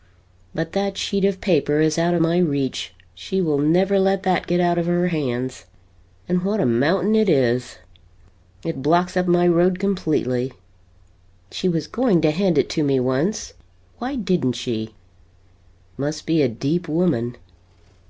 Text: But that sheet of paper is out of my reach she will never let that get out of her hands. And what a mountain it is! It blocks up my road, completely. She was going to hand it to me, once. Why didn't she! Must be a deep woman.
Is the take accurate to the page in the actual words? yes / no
yes